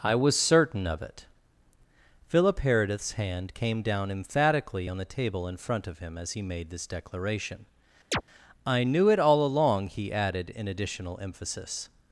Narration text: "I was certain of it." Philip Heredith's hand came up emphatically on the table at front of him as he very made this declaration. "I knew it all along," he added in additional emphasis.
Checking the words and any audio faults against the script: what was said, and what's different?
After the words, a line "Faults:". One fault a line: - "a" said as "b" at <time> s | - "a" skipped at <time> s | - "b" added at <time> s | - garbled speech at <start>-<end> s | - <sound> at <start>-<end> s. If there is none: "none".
"I was certain of it." Philip Heredith's hand came down emphatically on the table in front of him as he made this declaration. "I knew it all along," he added in additional emphasis.
Faults:
- "up" said as "down" at 3.8 s
- "at" said as "in" at 5.5 s
- "very" skipped at 6.4 s
- chirp at 8.1-8.2 s